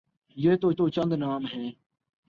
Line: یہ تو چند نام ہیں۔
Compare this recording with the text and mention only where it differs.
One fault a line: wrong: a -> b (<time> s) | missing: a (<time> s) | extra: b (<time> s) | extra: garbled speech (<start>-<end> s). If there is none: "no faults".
extra: تو (0.7 s)